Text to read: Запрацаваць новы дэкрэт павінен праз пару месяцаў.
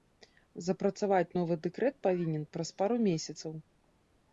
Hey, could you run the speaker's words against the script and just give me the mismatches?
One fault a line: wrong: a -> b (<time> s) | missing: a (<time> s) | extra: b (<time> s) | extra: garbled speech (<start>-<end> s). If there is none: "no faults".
no faults